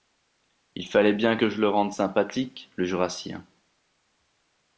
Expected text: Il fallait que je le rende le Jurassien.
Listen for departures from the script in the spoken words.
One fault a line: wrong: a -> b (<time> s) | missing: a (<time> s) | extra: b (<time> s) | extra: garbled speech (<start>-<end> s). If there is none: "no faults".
extra: bien (1.1 s)
extra: sympathique (1.9 s)